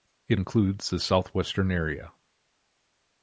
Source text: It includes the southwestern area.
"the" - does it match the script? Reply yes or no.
yes